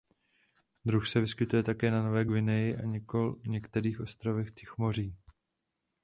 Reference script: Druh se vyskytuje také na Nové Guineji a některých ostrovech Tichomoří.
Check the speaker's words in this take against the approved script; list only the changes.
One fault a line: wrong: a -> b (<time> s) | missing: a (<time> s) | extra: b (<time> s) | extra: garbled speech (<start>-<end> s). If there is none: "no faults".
no faults